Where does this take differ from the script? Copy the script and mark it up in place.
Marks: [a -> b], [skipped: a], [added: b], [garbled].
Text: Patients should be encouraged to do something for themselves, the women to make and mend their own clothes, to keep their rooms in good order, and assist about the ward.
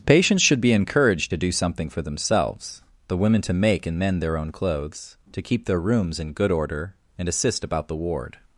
Patients should be encouraged to do something for themselves, the women to make and mend their own clothes, to keep their rooms in good order, and assist about the ward.